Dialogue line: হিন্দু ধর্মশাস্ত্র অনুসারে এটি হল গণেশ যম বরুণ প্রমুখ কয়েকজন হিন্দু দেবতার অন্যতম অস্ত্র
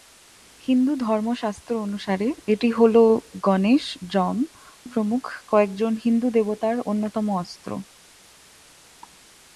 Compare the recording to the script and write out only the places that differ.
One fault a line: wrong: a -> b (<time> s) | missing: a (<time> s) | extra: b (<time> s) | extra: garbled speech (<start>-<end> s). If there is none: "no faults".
missing: বরুণ (4.4 s)